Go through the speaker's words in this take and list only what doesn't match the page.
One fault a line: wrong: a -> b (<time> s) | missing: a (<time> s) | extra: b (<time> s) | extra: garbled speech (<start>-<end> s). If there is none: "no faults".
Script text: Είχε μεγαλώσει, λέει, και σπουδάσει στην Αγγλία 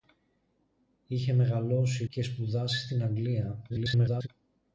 missing: λέει (2.0 s)
extra: garbled speech (3.7-4.3 s)